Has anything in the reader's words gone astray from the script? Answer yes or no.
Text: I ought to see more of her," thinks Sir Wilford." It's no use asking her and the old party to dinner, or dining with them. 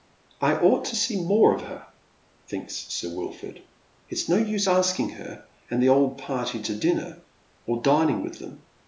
no